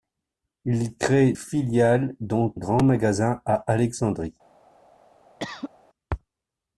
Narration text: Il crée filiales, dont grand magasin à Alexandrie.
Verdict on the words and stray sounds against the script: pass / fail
fail